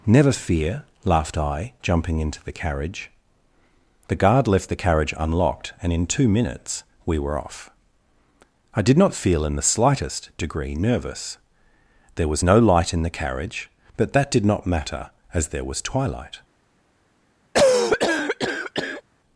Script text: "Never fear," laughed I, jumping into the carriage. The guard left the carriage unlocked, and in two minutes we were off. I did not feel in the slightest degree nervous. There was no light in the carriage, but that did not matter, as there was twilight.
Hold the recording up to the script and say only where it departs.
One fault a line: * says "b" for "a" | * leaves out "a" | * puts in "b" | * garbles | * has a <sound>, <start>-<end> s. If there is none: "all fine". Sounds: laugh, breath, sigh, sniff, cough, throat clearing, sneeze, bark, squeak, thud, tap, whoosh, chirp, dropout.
* has a cough, 17.5-19.0 s